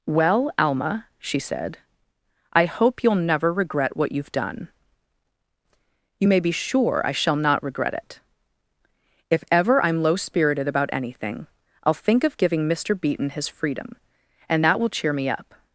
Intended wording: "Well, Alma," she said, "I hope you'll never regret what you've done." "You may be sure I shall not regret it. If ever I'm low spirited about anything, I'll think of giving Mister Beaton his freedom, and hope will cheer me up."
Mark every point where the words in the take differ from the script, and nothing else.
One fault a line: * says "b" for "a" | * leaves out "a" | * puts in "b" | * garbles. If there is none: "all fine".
* says "that" for "hope"